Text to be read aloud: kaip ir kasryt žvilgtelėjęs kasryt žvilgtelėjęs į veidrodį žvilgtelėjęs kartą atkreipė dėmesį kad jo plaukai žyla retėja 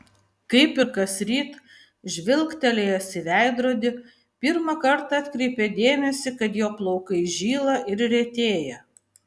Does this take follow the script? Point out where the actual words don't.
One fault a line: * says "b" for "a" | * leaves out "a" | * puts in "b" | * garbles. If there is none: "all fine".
* leaves out "kasryt žvilgtelėjęs"
* says "pirmą" for "žvilgtelėjęs"
* puts in "ir"